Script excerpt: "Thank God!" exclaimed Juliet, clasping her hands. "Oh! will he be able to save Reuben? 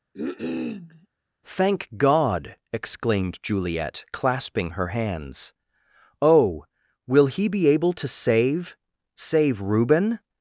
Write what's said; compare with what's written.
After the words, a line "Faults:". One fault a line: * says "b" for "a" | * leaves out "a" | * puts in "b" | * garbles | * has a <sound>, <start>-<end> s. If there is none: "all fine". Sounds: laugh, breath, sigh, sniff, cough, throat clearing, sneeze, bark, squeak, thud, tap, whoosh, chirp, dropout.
"Thank God!" exclaimed Juliet, clasping her hands. "Oh! will he be able to save save Reuben?
Faults:
* has a cough, 0.1-1.1 s
* puts in "save"